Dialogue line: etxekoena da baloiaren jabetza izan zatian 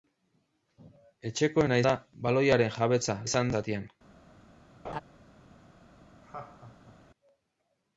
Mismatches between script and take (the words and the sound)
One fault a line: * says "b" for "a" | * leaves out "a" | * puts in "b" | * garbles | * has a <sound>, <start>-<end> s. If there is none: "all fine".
* has a laugh, 4.8-5.0 s
* has a laugh, 6.2-7.0 s